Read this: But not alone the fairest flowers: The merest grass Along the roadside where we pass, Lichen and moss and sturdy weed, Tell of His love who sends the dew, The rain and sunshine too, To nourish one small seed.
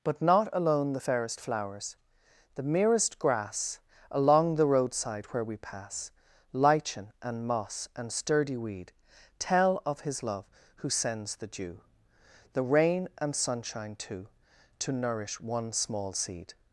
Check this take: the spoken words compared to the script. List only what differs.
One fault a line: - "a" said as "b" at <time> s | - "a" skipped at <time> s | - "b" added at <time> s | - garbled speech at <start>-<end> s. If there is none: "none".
none